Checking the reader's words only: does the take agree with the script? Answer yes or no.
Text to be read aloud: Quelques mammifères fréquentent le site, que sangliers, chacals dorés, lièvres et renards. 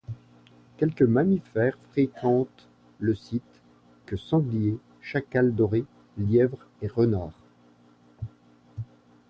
yes